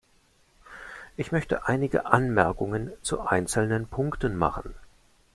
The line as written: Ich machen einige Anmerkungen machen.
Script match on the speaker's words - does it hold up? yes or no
no